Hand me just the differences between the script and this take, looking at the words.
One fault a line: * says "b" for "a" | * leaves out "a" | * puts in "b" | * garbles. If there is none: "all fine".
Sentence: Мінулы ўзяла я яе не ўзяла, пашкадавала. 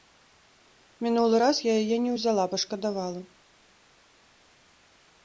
* says "раз" for "ўзяла"